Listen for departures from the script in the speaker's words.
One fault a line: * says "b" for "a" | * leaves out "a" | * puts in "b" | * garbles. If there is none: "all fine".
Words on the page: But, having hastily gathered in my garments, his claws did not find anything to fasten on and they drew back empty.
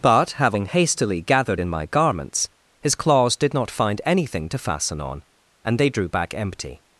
all fine